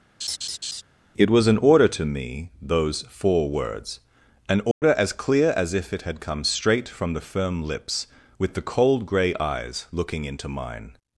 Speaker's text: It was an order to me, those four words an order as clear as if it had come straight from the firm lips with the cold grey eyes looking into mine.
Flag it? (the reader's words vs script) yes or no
no